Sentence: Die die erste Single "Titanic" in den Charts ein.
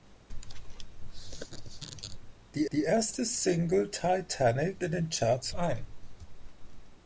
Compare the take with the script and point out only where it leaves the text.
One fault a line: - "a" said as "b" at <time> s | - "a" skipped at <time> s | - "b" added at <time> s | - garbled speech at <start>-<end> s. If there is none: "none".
none